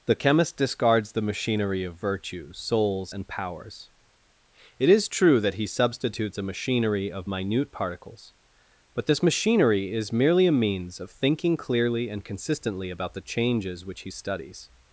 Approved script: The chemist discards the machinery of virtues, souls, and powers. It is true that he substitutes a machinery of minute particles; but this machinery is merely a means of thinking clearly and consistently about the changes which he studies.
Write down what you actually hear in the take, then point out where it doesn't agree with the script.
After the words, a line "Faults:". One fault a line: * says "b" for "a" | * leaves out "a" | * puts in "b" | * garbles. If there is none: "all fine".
The chemist discards the machinery of virtues, souls, and powers. It is true that he substitutes a machinery of minute particles; but this machinery is merely a means of thinking clearly and consistently about the changes which he studies.
Faults:
all fine